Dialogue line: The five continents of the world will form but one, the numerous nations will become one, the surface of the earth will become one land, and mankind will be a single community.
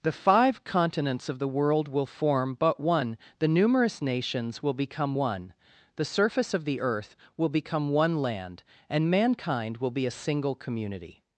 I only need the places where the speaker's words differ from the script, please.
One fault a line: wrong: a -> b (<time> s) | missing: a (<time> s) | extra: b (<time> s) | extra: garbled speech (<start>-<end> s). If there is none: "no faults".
no faults